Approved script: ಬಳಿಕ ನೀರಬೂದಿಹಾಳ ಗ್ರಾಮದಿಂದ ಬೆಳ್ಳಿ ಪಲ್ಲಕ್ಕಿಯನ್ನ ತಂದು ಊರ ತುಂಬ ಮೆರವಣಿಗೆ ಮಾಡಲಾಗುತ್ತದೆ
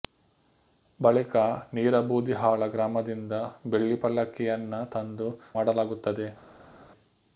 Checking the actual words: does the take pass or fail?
fail